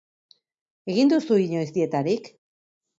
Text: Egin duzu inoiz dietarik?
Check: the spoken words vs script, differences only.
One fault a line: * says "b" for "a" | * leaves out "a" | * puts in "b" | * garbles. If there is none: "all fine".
all fine